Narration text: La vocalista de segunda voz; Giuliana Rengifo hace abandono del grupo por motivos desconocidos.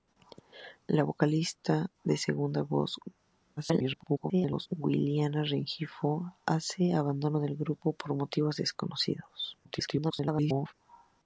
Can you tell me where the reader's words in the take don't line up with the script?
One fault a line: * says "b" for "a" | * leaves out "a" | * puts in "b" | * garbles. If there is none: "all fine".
* garbles
* garbles